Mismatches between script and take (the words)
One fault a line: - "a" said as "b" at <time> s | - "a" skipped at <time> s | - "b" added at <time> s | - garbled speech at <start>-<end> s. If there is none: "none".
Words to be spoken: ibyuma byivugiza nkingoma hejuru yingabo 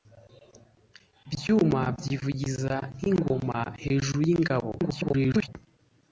- garbled speech at 4.8-5.5 s